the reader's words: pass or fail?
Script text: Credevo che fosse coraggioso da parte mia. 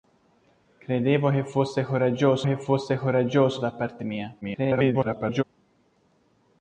fail